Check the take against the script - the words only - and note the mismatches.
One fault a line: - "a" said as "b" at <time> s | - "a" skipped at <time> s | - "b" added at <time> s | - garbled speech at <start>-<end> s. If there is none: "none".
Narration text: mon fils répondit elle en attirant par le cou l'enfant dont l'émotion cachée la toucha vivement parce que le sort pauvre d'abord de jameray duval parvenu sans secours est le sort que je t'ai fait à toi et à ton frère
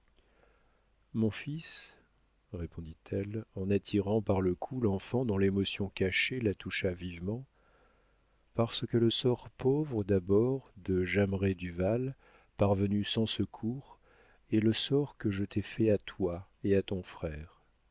none